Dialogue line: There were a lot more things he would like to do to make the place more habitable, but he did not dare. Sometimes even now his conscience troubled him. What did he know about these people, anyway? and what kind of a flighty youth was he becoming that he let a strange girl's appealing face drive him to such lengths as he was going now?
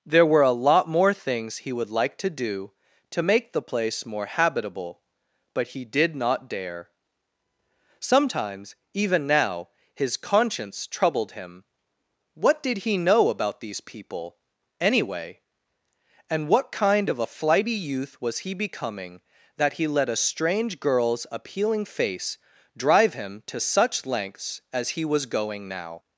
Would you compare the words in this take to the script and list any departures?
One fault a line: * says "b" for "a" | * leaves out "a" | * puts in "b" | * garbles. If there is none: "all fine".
all fine